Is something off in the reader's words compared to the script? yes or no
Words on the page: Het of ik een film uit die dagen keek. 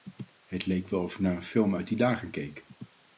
yes